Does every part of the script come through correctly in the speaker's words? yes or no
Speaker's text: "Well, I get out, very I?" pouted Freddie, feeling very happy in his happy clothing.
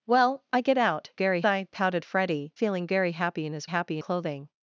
yes